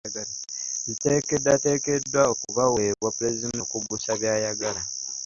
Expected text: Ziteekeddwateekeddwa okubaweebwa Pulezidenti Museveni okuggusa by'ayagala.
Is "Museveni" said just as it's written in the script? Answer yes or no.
no